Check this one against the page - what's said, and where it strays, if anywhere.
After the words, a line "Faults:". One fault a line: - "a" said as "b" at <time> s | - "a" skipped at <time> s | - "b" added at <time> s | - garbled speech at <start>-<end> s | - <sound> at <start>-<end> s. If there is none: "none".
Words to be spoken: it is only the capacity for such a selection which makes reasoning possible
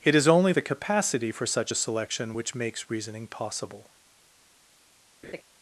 it is only the capacity for such a selection which makes reasoning possible
Faults:
- laugh at 5.2-5.4 s